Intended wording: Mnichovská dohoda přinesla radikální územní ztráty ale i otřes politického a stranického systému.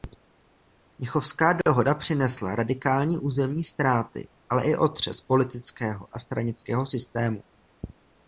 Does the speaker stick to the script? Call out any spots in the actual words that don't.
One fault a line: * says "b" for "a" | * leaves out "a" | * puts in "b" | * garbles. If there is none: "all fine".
all fine